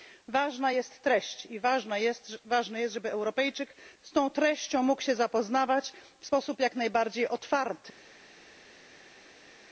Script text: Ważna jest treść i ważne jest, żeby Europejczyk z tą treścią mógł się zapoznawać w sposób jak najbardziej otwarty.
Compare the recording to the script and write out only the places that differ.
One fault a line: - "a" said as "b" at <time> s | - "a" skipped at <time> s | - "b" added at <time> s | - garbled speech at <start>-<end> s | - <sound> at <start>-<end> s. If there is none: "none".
none